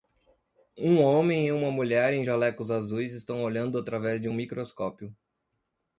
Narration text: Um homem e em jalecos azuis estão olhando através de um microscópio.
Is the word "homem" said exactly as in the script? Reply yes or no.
yes